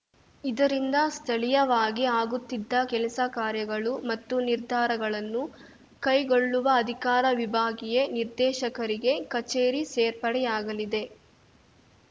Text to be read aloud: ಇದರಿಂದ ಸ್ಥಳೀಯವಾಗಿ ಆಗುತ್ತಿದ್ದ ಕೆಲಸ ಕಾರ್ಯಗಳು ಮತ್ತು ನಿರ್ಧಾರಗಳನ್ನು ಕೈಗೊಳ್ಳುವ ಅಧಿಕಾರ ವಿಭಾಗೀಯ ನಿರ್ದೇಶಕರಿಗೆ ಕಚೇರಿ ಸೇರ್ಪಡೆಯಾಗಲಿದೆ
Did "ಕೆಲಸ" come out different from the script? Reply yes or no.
no